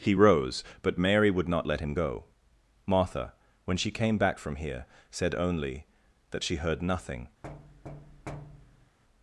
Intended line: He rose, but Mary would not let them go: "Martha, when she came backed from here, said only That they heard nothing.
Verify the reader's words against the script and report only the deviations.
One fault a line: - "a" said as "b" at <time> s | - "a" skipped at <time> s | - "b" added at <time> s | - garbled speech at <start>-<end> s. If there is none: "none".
- "them" said as "him" at 1.8 s
- "backed" said as "back" at 4.2 s
- "they" said as "she" at 6.4 s